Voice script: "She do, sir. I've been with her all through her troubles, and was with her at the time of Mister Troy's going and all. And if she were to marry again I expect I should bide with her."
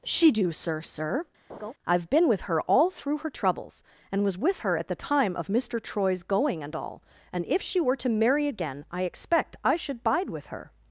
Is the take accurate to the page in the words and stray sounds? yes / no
no